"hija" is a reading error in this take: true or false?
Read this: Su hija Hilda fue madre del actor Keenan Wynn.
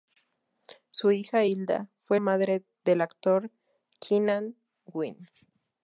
false